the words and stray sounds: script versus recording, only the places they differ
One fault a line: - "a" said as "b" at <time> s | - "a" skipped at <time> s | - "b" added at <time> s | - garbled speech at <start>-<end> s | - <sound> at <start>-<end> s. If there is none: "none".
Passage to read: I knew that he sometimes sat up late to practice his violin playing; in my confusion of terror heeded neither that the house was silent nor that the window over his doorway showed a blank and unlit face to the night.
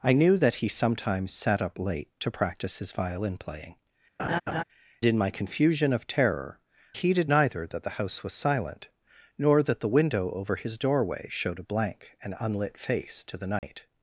- laugh at 4.2-4.6 s
- dropout at 13.6-13.6 s